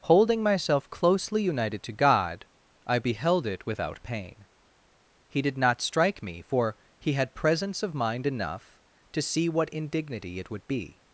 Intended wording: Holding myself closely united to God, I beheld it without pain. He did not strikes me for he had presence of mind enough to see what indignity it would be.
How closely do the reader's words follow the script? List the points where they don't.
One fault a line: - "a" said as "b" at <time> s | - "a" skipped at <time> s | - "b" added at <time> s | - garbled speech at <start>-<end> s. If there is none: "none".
- "strikes" said as "strike" at 5.8 s